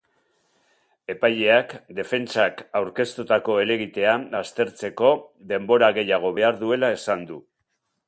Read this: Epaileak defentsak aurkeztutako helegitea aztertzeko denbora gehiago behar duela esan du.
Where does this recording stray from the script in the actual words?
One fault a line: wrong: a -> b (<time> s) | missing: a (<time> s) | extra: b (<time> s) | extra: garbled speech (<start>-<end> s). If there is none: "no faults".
no faults